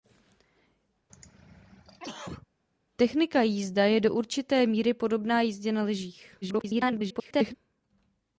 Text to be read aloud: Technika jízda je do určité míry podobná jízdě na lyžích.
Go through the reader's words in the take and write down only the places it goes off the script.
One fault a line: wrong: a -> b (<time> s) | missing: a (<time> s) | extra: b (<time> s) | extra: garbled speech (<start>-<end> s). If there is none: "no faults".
extra: garbled speech (6.4-7.5 s)